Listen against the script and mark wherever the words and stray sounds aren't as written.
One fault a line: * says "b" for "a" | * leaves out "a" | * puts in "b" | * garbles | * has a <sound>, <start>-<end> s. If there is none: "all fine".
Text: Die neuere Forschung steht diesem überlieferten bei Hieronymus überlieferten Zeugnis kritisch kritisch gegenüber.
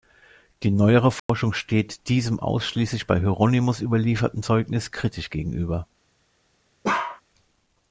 * has a dropout, 1.2-1.3 s
* says "ausschließlich" for "überlieferten"
* leaves out "kritisch"
* has a bark, 6.8-7.2 s